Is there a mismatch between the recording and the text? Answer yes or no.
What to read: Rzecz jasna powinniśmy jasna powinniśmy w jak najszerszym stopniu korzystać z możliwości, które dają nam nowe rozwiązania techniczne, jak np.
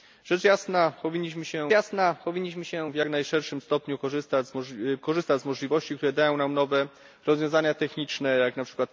no